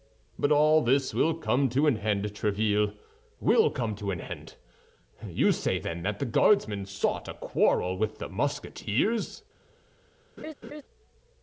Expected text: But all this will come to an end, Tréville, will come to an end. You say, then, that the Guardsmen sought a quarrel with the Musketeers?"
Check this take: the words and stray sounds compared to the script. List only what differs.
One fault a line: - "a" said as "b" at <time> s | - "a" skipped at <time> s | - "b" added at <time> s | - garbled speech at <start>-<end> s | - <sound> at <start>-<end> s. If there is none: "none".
- laugh at 10.4-10.8 s